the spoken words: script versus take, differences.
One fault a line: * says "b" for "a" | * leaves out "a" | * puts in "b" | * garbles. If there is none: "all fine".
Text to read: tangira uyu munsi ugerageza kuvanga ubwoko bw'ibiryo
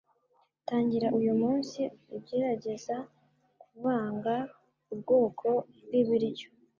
all fine